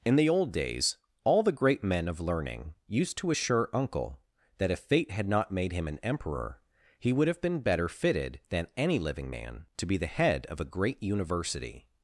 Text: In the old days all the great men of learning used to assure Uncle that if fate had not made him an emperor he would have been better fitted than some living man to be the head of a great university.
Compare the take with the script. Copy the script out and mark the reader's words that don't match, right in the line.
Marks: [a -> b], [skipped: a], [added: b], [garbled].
In the old days all the great men of learning used to assure Uncle that if fate had not made him an emperor he would have been better fitted than [some -> any] living man to be the head of a great university.